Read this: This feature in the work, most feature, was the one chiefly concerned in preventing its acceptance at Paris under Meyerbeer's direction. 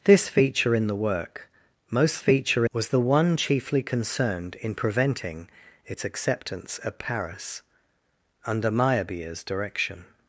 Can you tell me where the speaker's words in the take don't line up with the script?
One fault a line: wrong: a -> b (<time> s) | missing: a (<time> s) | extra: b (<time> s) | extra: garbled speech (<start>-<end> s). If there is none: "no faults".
no faults